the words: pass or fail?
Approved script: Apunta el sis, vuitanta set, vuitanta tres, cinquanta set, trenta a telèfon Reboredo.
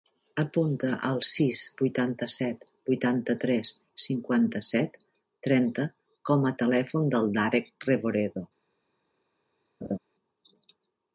fail